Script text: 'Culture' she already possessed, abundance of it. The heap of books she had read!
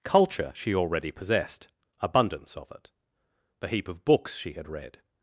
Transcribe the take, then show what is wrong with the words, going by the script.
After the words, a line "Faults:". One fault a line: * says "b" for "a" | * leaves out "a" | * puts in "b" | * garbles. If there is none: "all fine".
'Culture' she already possessed, abundance of it. The heap of books she had read!
Faults:
all fine